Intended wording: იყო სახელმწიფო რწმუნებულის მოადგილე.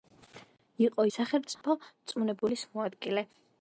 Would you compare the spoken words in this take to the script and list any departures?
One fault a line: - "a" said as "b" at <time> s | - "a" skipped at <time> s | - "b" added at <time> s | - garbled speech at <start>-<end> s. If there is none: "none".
none